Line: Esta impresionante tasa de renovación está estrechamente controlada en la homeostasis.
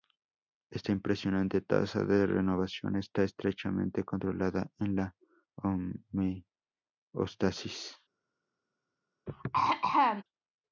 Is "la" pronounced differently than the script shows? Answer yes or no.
no